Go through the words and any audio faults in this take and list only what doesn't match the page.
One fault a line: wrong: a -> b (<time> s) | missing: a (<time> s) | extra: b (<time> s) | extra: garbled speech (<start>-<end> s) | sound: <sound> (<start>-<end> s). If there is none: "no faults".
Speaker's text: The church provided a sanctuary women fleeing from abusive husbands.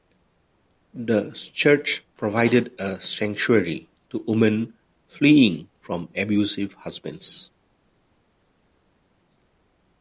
extra: to (4.1 s)